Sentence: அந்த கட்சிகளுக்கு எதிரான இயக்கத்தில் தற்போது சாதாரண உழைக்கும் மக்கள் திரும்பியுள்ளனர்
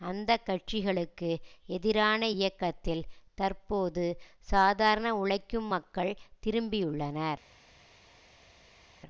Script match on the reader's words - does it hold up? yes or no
yes